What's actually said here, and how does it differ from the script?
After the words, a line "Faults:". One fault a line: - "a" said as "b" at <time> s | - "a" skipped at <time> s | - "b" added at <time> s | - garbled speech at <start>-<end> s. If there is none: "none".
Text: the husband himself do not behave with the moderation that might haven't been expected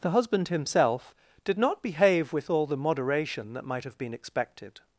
the husband himself did not behave with all the moderation that might have been expected
Faults:
- "do" said as "did" at 1.4 s
- "all" added at 2.5 s
- "haven't" said as "have" at 3.8 s